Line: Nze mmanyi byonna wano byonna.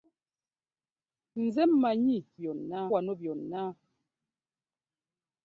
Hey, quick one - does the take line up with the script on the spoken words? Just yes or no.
yes